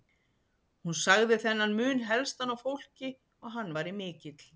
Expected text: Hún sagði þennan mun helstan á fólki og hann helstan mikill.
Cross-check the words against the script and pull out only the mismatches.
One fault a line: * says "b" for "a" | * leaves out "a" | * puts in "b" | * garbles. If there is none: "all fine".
* says "væri" for "helstan"